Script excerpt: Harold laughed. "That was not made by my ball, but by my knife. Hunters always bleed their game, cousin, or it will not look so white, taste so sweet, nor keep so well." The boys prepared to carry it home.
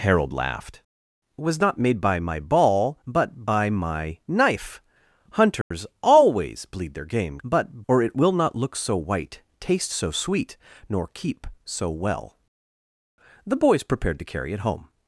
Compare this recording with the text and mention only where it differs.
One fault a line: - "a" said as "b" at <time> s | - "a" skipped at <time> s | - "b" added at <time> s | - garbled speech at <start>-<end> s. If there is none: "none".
- "That" skipped at 0.8 s
- "cousin" said as "but" at 7.4 s